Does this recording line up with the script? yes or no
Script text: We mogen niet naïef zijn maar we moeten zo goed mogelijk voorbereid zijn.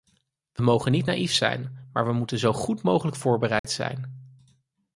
yes